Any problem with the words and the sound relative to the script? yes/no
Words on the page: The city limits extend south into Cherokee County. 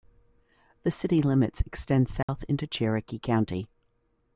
yes